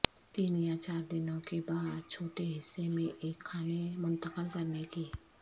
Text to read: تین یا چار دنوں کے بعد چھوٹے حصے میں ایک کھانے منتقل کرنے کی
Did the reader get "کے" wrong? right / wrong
right